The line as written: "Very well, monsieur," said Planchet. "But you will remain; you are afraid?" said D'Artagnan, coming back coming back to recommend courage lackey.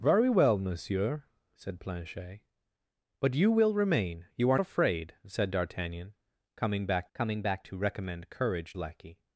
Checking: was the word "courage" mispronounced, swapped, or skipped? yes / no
no